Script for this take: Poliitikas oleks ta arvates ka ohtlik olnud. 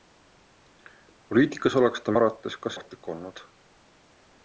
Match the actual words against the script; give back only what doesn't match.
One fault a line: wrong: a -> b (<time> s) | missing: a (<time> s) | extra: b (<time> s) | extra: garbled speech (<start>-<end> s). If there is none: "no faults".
no faults